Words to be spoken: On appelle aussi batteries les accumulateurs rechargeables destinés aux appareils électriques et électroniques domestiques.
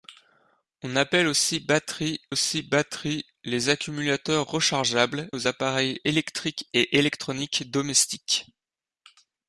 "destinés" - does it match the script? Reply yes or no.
no